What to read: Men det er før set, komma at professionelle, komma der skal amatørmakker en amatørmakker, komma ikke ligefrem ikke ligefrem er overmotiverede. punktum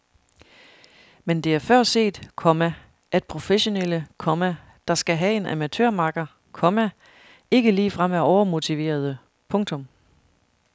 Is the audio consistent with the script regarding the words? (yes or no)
no